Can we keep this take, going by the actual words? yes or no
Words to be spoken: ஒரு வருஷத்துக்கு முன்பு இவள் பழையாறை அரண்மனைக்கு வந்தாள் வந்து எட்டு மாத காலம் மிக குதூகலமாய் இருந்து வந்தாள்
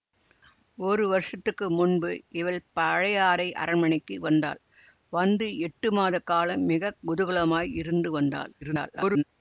no